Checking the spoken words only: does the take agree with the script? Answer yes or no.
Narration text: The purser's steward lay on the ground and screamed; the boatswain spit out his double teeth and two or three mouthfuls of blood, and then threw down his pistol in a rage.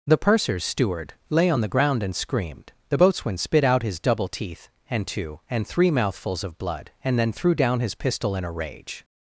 no